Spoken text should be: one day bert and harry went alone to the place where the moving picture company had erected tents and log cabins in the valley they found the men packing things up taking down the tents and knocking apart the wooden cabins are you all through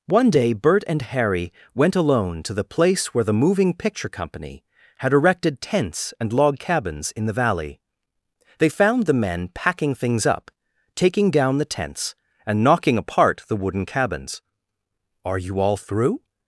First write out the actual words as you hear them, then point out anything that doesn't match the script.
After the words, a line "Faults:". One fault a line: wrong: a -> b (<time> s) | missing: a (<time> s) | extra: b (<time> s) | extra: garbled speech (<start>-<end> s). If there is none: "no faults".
one day bert and harry went alone to the place where the moving picture company had erected tents and log cabins in the valley they found the men packing things up taking down the tents and knocking apart the wooden cabins are you all through
Faults:
no faults